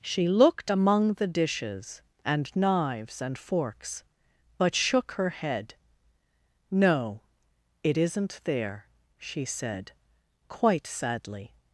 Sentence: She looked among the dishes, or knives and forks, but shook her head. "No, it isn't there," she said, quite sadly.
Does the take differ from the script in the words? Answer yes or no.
yes